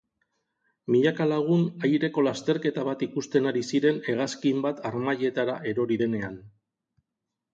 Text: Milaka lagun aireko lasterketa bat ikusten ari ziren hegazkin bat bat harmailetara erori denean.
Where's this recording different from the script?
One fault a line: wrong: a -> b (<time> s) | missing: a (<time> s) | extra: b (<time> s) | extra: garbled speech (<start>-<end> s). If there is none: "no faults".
missing: bat (4.8 s)